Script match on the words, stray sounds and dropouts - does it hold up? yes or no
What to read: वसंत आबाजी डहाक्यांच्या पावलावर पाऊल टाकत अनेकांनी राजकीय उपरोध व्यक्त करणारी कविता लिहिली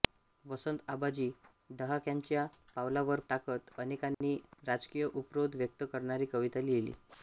no